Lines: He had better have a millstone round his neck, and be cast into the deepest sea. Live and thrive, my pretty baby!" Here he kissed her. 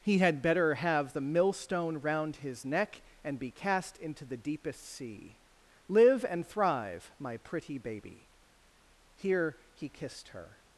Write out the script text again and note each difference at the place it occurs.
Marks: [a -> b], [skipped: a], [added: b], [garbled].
He had better have [a -> the] millstone round his neck, and be cast into the deepest sea. Live and thrive, my pretty baby!" Here he kissed her.